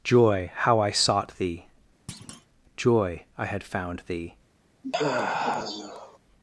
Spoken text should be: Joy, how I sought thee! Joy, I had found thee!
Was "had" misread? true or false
false